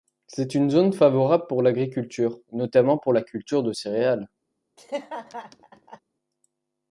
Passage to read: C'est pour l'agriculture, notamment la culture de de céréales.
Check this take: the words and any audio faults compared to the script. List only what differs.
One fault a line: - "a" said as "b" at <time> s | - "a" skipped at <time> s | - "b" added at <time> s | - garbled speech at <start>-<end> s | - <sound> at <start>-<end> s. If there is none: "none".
- "une zone favorable" added at 0.6 s
- "pour" added at 3.0 s
- "de" skipped at 3.7 s
- laugh at 4.8-6.0 s